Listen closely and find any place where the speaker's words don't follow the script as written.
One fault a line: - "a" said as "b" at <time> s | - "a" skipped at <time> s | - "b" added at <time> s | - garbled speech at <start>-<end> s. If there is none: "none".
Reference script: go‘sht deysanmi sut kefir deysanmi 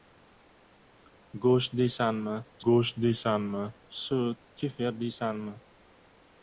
- "go‘sht deysanmi" added at 2.7 s